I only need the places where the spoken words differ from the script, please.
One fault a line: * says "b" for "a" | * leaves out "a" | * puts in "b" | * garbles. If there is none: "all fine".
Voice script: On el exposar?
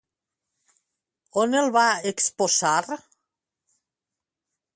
* puts in "va"